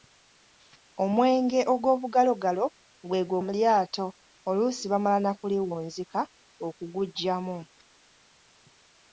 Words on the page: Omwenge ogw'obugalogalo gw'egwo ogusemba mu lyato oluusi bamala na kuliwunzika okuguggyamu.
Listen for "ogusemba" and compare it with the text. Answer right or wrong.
wrong